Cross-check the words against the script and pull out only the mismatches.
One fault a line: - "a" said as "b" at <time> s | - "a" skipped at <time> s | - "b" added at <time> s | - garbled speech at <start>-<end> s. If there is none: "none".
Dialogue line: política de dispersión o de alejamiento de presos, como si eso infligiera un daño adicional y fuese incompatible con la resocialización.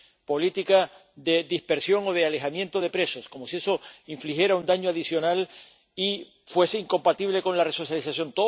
none